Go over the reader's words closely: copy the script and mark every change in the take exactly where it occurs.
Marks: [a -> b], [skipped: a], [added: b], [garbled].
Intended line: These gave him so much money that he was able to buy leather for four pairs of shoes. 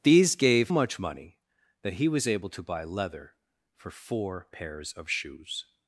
These gave [skipped: him so] much money that he was able to buy leather for four pairs of shoes.